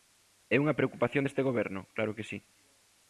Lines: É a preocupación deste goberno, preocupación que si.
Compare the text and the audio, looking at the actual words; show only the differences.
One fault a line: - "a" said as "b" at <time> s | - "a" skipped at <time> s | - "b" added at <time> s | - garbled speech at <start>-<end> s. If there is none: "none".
- "a" said as "unha" at 0.6 s
- "preocupación" said as "claro" at 1.9 s